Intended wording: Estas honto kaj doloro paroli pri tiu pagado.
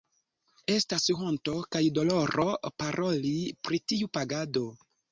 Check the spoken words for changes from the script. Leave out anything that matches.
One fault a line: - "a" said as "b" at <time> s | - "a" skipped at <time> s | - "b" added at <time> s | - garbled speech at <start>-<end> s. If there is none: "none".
none